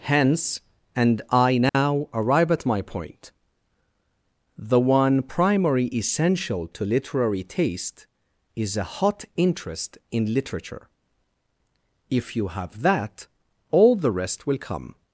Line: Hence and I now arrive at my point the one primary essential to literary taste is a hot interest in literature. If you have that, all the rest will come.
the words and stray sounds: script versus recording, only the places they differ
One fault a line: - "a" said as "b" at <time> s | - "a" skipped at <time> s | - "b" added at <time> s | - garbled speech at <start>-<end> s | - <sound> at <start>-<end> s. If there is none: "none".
- dropout at 1.7-1.7 s